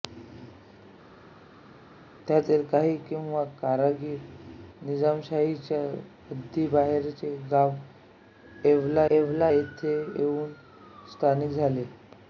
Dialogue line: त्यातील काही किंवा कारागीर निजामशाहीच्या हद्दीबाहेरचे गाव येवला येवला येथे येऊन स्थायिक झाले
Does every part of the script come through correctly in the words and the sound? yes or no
yes